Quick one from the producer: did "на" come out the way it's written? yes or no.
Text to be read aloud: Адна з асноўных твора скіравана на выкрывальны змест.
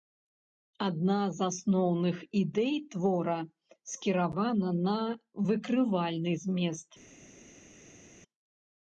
yes